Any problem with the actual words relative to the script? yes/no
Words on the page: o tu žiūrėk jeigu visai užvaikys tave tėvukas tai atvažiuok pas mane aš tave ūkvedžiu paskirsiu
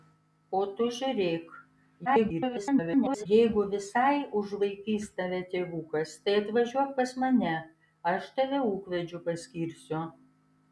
yes